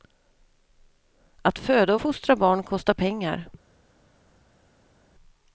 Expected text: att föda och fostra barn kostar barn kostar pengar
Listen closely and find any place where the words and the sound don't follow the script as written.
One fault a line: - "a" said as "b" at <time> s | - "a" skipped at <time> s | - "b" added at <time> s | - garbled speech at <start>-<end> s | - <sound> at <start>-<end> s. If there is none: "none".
- "barn kostar" skipped at 2.9 s